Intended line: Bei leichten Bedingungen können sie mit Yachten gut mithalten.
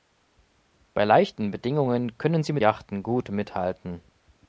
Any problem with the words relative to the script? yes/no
no